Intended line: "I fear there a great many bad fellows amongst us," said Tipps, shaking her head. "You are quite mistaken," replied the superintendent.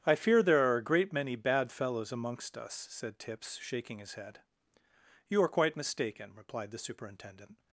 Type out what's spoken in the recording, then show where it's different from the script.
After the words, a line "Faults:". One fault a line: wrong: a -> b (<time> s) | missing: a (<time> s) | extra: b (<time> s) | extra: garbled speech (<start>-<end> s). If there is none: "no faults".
"I fear there are a great many bad fellows amongst us," said Tipps, shaking his head. "You are quite mistaken," replied the superintendent.
Faults:
extra: are (0.7 s)
wrong: her -> his (4.0 s)